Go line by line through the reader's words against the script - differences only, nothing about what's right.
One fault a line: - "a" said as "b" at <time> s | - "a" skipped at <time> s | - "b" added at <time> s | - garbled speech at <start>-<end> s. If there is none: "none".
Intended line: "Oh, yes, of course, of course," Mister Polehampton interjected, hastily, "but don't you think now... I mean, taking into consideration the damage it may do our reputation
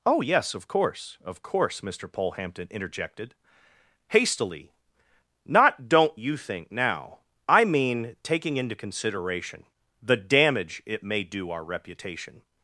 - "but" said as "not" at 5.5 s